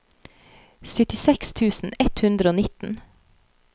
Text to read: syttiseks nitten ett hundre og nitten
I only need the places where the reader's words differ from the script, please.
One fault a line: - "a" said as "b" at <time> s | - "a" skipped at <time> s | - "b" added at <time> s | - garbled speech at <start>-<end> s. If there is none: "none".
- "nitten" said as "tusen" at 1.6 s